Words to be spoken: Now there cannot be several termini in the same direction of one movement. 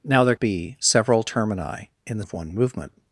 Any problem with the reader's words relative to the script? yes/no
yes